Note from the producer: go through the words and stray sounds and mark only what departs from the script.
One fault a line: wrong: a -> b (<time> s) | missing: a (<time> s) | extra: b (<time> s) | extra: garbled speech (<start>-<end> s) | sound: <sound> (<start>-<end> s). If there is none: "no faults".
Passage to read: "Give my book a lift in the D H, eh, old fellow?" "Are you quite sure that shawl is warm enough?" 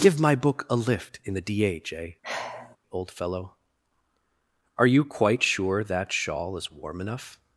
sound: sigh (2.2-2.8 s)